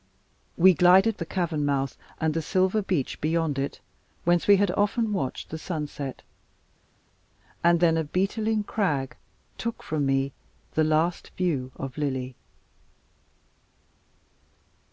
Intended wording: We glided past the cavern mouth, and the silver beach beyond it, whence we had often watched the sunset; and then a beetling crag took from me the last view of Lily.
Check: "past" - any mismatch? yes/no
yes